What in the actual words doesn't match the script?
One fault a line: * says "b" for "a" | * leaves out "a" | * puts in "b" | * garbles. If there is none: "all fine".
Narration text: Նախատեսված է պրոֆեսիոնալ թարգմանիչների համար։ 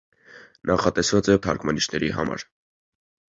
* leaves out "պրոֆեսիոնալ"